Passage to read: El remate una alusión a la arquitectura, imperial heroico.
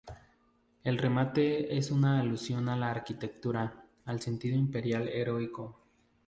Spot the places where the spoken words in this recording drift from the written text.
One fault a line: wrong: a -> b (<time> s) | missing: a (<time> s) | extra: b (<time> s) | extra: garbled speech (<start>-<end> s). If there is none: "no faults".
extra: es (1.8 s)
extra: al sentido (4.0 s)